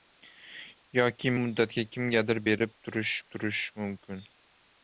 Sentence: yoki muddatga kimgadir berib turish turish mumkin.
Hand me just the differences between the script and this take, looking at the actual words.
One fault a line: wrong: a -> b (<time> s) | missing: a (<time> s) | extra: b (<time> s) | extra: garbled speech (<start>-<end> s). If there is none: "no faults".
no faults